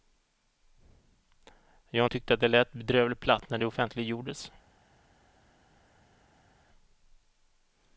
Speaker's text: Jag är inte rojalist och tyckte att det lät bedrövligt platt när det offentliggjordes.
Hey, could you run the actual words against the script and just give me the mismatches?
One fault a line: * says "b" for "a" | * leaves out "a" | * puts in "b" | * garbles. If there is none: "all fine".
* leaves out "inte rojalist och"